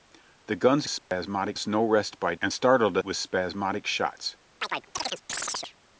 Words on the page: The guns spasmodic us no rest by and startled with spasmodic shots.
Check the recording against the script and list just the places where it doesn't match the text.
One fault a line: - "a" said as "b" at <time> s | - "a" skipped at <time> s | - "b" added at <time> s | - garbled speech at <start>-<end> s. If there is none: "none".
none